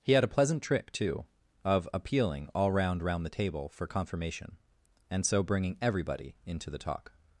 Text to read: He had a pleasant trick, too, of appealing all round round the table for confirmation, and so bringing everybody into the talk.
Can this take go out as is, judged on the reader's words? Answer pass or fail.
pass